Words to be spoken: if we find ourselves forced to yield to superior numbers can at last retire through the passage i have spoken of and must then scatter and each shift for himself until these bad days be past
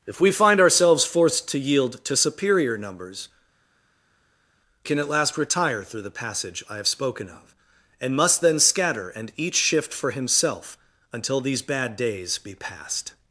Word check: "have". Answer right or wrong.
right